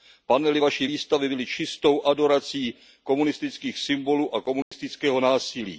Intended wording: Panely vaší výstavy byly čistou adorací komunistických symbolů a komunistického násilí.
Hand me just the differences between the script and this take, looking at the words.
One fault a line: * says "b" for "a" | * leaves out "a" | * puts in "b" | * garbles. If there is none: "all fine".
all fine